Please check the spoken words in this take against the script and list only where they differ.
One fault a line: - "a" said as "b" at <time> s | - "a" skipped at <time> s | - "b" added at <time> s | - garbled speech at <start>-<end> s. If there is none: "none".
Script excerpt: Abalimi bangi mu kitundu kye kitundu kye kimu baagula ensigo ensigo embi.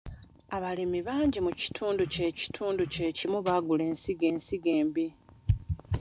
none